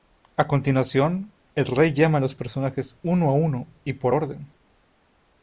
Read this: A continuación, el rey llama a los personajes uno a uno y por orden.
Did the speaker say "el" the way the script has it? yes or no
yes